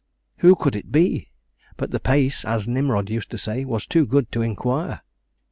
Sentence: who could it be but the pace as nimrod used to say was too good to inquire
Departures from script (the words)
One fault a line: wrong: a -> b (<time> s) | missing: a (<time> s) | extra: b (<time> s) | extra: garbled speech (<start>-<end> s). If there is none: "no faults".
no faults